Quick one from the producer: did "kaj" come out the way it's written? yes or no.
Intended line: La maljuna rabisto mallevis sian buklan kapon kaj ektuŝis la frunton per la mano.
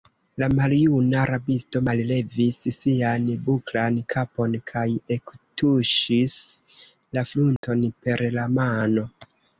yes